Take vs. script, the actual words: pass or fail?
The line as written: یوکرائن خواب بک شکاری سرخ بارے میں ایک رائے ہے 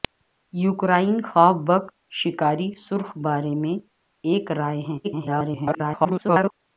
fail